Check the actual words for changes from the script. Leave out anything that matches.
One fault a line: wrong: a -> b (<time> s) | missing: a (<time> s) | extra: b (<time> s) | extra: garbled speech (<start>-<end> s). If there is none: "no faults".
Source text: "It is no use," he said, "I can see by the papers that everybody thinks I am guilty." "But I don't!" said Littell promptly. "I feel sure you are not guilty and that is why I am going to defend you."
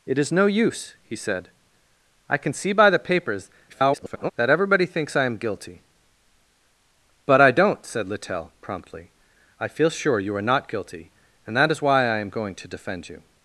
extra: garbled speech (3.7-4.3 s)